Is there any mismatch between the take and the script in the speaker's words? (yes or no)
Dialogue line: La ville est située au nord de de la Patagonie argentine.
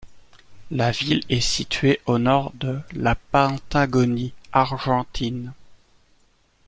yes